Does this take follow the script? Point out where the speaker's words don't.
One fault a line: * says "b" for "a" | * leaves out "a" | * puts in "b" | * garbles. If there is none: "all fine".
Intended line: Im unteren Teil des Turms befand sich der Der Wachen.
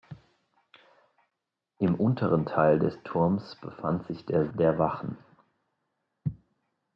all fine